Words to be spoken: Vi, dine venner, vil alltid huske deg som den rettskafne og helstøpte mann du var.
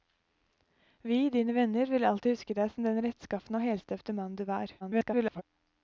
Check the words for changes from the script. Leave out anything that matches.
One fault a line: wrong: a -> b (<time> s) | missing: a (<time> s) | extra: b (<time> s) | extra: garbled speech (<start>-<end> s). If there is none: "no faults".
extra: garbled speech (4.8-5.4 s)